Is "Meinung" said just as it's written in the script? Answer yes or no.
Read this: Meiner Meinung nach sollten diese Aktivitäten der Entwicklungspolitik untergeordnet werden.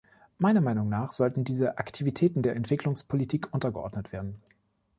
yes